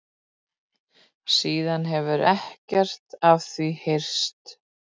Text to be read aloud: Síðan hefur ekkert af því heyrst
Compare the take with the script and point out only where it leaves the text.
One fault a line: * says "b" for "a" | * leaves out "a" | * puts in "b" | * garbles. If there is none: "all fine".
all fine